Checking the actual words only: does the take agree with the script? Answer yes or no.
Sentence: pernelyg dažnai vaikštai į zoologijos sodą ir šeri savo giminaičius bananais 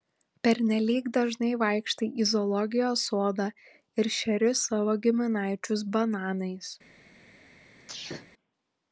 yes